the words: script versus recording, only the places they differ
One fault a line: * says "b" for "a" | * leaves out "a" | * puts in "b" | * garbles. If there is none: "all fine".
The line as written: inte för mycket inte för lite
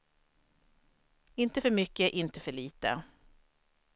all fine